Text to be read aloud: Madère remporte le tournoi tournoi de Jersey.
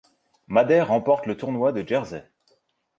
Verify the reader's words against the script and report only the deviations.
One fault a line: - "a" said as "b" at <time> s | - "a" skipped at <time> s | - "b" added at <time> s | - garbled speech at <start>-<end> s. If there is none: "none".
- "tournoi" skipped at 1.7 s